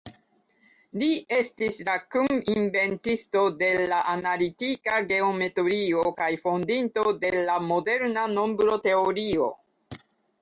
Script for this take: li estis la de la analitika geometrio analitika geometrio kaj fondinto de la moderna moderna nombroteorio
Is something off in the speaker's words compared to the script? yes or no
yes